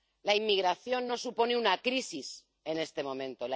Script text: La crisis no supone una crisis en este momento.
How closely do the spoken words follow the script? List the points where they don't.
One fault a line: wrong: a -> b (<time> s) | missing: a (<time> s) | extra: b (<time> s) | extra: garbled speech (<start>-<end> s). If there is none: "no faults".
wrong: crisis -> inmigración (0.3 s)